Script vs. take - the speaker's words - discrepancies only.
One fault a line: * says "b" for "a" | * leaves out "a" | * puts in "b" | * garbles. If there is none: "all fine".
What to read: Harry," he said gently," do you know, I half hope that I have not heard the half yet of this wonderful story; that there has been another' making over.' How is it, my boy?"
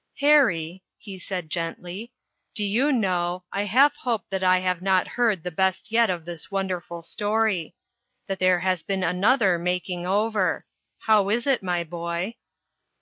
* says "best" for "half"